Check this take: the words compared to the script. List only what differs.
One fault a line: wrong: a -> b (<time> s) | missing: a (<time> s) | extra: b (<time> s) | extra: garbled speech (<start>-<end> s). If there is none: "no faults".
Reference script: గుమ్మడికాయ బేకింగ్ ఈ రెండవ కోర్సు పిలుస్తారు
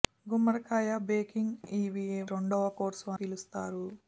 no faults